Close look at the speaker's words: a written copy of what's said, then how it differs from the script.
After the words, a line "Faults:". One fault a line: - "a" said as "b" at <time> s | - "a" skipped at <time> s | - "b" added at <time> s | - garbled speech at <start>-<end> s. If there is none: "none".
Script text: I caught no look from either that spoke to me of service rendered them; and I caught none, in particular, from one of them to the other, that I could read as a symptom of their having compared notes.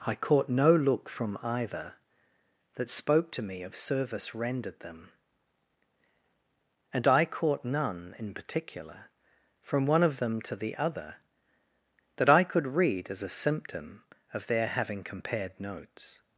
I caught no look from either that spoke to me of service rendered them; and I caught none, in particular, from one of them to the other, that I could read as a symptom of their having compared notes.
Faults:
none